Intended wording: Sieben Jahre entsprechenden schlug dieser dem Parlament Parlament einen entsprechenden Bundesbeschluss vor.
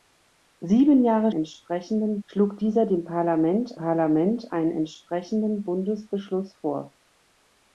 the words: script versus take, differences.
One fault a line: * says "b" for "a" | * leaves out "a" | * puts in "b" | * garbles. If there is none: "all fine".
all fine